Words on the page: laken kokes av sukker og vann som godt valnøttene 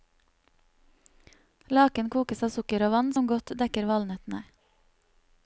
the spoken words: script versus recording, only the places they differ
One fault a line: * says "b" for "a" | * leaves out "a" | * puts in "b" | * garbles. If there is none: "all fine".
* puts in "dekker"